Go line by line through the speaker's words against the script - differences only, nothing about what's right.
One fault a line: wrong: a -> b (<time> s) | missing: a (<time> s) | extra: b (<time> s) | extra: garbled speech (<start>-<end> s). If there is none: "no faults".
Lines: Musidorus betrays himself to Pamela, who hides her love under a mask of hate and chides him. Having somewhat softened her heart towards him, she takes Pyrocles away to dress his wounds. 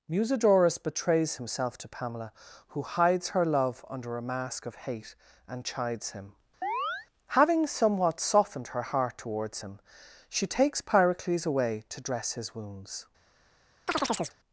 no faults